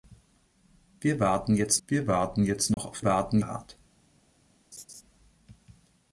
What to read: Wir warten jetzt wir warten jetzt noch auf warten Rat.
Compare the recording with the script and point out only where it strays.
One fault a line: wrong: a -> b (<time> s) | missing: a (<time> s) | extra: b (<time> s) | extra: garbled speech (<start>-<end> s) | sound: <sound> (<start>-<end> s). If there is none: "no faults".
sound: dropout (2.7-2.8 s)
sound: laugh (4.7-5.0 s)